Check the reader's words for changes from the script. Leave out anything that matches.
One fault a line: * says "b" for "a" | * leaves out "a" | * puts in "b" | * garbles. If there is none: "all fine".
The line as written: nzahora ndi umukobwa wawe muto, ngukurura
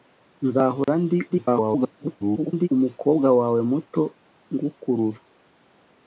* garbles